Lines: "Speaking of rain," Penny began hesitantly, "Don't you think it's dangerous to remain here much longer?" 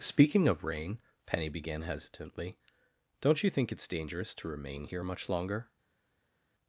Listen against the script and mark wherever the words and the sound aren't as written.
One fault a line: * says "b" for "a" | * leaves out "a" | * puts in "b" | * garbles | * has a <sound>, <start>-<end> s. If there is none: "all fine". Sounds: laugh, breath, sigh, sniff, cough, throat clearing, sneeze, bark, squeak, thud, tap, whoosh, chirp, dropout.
all fine